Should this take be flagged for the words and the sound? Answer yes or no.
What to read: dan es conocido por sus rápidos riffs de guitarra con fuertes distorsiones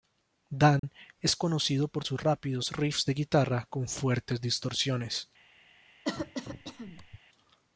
yes